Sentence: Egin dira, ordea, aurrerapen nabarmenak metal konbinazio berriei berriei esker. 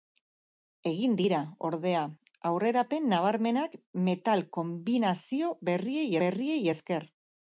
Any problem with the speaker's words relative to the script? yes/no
no